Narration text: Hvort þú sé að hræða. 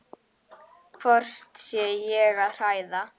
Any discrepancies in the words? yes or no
yes